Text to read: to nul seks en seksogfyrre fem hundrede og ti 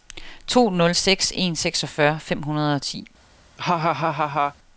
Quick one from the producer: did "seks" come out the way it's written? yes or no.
yes